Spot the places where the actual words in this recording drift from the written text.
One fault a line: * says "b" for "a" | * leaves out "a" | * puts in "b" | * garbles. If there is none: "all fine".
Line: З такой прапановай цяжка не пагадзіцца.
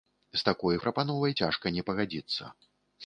all fine